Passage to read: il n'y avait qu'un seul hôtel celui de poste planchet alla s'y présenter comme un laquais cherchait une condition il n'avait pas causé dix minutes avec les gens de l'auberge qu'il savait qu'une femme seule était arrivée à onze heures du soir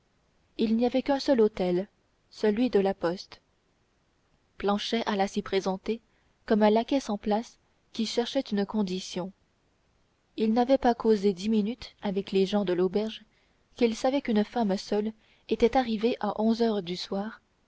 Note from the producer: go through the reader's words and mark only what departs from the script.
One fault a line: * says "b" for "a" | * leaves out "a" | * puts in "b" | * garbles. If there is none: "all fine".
* puts in "la"
* puts in "sans place qui"